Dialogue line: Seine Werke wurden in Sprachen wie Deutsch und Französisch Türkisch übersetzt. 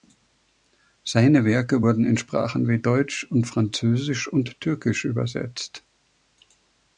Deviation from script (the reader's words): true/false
true